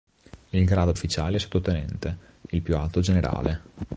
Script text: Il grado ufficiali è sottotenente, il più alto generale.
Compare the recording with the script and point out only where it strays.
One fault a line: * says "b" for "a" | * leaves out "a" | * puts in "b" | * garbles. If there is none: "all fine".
all fine